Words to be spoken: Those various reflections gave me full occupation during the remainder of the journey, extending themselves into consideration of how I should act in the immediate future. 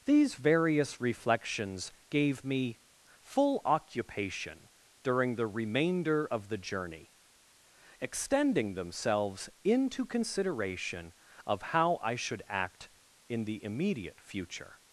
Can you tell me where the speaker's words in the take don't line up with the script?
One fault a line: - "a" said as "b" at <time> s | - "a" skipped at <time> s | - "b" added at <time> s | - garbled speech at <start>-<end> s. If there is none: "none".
- "Those" said as "These" at 0.1 s